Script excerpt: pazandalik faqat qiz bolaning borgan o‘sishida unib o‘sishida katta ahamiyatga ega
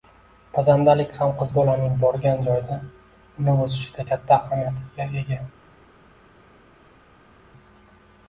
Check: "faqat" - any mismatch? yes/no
yes